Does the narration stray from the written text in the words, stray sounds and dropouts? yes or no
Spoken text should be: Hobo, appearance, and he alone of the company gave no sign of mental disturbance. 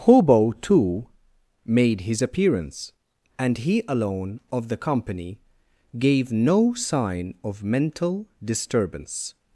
yes